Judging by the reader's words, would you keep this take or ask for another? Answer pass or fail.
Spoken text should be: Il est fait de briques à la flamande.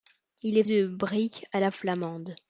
fail